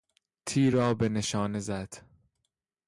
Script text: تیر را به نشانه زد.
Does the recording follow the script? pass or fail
pass